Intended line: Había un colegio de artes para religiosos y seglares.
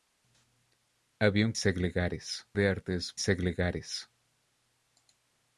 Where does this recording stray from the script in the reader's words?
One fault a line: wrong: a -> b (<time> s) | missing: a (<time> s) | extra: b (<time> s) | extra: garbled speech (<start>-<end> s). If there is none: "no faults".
wrong: colegio -> seglares (1.6 s)
missing: para religiosos y (3.1 s)